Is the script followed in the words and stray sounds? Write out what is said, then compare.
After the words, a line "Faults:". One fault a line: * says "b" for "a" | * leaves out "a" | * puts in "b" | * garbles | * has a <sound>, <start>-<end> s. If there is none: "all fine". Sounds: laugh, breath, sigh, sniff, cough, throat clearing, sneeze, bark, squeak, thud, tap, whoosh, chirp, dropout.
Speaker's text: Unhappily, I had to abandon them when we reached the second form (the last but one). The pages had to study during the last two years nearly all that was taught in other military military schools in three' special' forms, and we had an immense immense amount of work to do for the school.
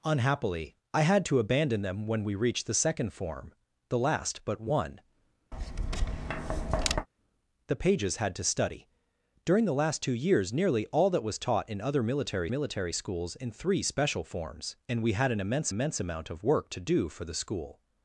Unhappily, I had to abandon them when we reached the second form (the last but one). The pages had to study during the last two years nearly all that was taught in other military military schools in three' special' forms, and we had an immense immense amount of work to do for the school.
Faults:
* has a tap, 5.5-7.1 s